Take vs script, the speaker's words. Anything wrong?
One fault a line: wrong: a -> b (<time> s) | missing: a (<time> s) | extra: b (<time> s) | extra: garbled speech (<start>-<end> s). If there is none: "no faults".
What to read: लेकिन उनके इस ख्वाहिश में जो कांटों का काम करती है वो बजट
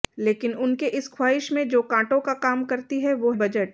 no faults